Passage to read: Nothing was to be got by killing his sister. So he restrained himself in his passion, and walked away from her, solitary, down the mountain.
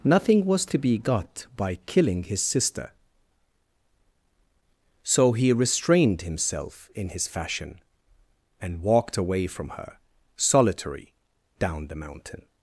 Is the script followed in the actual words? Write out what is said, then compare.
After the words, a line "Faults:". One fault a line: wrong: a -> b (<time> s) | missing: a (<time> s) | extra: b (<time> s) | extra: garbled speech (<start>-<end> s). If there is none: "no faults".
Nothing was to be got by killing his sister. So he restrained himself in his fashion, and walked away from her, solitary, down the mountain.
Faults:
wrong: passion -> fashion (7.3 s)